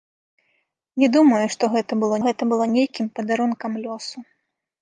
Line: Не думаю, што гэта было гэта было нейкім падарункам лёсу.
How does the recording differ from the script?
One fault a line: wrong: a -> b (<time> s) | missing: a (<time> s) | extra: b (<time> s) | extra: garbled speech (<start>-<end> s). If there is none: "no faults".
no faults